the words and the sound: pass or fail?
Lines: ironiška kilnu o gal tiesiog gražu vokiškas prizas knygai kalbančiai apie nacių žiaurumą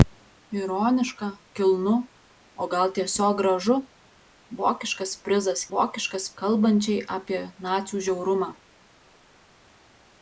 fail